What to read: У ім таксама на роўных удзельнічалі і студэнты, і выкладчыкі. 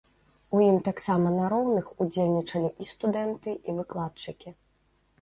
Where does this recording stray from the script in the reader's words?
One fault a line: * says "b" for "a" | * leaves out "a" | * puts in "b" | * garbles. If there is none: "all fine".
all fine